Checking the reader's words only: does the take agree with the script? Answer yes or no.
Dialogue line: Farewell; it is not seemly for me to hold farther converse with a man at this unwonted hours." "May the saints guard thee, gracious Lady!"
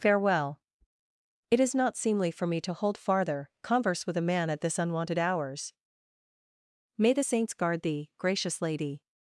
yes